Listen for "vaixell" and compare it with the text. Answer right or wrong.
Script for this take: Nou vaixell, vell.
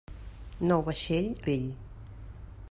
right